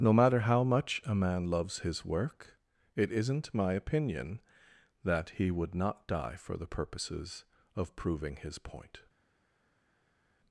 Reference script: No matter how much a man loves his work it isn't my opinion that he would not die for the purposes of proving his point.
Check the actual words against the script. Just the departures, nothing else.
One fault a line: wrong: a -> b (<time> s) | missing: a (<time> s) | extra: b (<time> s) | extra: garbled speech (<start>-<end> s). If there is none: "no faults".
no faults